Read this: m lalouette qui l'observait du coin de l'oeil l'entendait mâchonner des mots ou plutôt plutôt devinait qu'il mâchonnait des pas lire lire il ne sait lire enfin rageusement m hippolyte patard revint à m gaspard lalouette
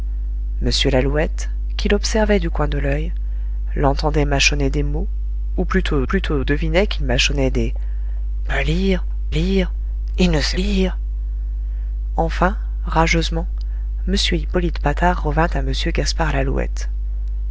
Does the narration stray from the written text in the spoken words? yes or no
no